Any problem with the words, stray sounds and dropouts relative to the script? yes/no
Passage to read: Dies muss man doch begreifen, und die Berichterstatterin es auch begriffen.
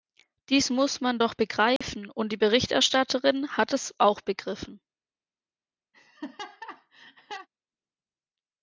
yes